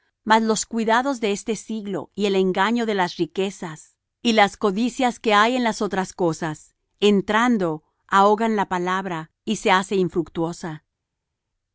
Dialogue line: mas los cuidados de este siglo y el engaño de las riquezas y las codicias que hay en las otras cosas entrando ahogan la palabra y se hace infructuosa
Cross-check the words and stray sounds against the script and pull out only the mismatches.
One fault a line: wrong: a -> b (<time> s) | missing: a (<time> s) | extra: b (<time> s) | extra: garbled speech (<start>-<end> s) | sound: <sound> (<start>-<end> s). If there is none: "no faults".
no faults